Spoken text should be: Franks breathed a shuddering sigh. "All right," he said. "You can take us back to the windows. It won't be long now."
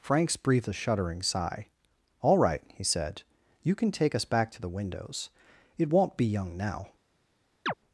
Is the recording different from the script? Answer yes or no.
yes